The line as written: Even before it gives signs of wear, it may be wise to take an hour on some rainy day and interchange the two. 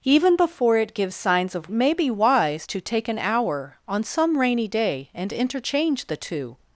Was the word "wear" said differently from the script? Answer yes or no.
yes